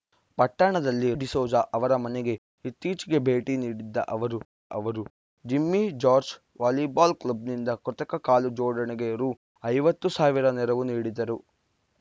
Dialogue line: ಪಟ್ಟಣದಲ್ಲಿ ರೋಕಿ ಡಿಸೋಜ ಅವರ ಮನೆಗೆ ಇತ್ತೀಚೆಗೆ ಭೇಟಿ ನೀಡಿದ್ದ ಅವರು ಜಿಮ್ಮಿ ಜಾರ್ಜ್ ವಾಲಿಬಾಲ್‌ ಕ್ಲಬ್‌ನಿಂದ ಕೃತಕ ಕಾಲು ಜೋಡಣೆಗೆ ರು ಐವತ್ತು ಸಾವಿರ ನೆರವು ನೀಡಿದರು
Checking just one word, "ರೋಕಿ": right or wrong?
wrong